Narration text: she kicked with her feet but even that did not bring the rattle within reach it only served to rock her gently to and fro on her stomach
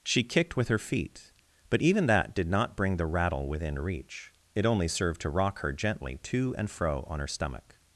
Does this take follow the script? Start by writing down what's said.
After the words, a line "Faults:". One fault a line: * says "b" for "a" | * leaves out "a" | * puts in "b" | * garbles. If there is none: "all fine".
she kicked with her feet but even that did not bring the rattle within reach it only served to rock her gently to and fro on her stomach
Faults:
all fine